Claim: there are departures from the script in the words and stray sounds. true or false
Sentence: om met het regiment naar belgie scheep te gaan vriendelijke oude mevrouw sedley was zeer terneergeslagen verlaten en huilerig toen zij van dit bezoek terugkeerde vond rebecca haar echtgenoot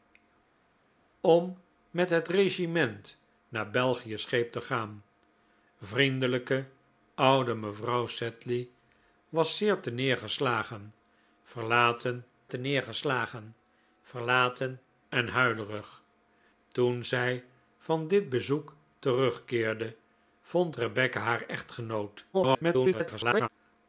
true